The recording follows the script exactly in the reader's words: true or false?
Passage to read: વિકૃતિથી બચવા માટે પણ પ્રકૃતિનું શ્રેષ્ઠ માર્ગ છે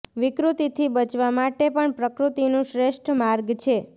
true